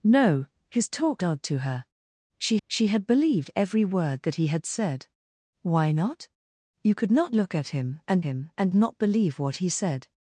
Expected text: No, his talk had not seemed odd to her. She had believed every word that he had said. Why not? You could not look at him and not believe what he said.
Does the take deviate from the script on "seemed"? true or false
true